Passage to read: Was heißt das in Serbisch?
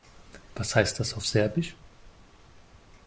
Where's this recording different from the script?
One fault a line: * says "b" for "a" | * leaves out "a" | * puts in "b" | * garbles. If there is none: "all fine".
* says "auf" for "in"